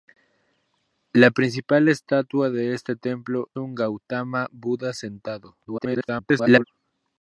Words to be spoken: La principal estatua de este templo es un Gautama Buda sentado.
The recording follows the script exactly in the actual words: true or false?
false